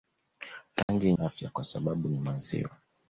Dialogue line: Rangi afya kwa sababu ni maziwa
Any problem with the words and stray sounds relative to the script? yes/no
yes